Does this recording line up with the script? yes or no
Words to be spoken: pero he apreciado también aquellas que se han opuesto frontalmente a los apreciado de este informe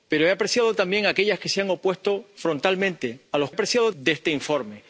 yes